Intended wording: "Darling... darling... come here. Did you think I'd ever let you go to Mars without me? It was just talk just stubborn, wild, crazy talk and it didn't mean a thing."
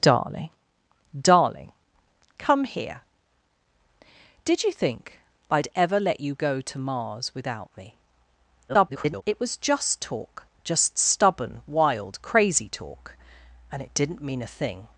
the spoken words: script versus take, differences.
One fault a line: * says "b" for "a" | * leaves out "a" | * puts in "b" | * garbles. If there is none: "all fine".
* garbles